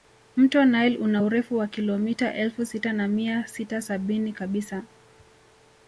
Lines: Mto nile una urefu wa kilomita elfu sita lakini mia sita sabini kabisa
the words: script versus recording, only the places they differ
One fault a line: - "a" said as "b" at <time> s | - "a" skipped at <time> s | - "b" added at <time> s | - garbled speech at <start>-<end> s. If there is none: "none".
- "lakini" said as "na" at 2.9 s